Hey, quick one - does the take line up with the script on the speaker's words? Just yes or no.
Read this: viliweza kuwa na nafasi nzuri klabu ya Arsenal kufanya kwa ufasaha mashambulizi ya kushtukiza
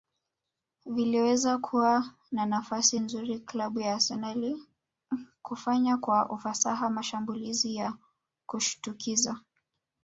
yes